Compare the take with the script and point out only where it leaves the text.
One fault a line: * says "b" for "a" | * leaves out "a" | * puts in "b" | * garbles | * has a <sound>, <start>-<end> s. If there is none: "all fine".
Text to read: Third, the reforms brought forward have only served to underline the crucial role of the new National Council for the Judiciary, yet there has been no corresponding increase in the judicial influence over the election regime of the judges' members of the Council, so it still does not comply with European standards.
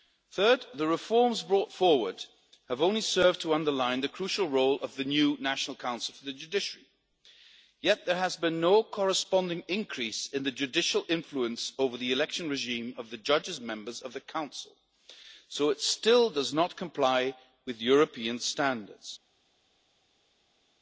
all fine